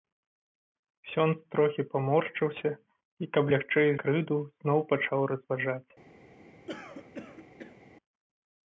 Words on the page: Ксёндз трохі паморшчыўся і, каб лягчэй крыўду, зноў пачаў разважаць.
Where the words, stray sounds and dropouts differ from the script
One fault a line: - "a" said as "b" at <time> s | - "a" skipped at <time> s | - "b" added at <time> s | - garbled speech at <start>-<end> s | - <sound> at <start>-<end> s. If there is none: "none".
- throat clearing at 6.7-7.8 s